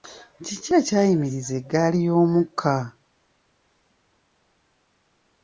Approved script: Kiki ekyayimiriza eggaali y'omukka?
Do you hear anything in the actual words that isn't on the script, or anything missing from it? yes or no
no